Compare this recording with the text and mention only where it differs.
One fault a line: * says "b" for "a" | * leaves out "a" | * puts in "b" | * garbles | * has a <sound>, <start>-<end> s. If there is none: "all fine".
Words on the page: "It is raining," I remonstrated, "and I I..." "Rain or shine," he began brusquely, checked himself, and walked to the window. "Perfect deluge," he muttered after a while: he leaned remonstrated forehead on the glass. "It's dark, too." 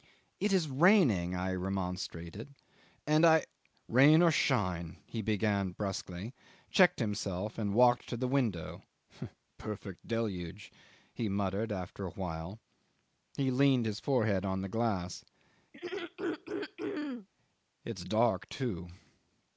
* leaves out "I"
* says "his" for "remonstrated"
* has a throat clearing, 15.7-17.3 s